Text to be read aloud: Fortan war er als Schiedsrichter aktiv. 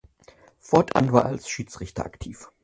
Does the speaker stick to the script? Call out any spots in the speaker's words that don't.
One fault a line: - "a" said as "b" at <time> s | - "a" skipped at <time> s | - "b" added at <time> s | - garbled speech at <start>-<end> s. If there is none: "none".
none